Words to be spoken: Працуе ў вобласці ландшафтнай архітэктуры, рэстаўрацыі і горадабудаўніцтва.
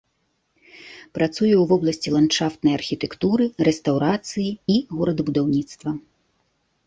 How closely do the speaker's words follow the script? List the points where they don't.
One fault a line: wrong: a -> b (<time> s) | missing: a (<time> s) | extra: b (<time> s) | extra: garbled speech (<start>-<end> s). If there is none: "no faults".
no faults